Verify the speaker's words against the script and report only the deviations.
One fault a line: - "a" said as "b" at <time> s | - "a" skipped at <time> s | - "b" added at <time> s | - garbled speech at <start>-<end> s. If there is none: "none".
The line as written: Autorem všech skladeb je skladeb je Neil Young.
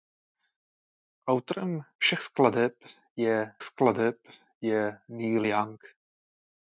none